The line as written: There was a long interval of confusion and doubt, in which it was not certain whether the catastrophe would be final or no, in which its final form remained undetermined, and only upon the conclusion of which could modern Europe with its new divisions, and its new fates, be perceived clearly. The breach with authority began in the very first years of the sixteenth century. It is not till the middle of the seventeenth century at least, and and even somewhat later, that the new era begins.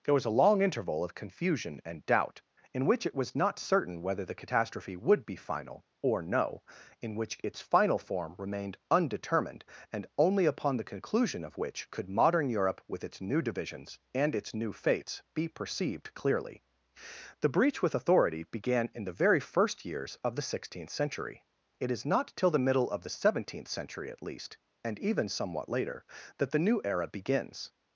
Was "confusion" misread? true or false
false